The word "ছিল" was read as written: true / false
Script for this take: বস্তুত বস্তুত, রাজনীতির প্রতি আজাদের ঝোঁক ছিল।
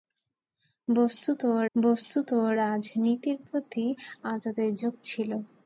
true